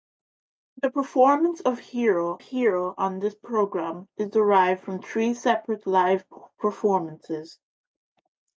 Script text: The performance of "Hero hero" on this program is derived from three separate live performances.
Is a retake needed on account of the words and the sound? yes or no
no